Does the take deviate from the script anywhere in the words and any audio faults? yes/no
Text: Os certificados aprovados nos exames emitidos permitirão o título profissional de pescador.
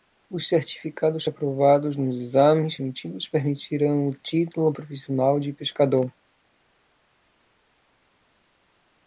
no